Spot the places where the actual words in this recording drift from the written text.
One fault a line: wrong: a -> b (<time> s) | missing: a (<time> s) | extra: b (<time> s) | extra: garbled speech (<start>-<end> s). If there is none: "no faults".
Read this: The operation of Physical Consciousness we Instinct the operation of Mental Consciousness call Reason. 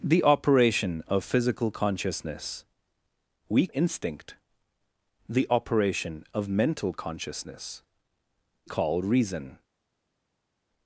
no faults